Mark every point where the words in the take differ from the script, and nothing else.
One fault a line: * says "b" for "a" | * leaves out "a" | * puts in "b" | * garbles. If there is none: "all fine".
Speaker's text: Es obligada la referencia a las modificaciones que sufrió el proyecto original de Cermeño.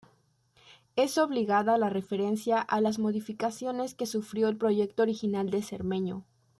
all fine